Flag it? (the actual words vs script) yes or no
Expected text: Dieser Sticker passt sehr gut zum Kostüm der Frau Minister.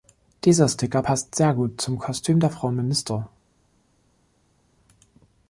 no